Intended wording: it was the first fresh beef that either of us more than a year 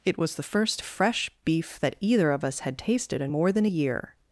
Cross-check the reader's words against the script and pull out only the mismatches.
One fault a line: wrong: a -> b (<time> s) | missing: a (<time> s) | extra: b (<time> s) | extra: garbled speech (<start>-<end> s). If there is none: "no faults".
extra: had tasted in (2.6 s)